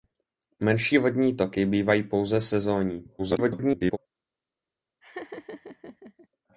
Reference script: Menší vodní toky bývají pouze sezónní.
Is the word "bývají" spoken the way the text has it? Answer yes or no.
yes